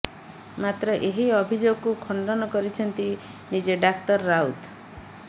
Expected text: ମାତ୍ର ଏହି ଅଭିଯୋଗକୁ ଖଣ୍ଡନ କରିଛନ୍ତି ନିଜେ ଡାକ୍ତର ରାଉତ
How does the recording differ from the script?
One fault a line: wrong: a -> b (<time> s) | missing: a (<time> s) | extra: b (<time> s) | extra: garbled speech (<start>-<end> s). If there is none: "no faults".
no faults